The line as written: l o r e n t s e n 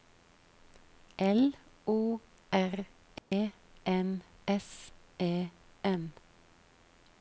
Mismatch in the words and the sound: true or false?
true